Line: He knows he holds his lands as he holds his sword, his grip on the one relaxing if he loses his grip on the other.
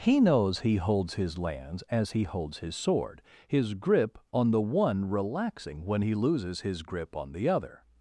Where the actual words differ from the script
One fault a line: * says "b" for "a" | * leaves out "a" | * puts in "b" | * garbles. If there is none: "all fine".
* says "when" for "if"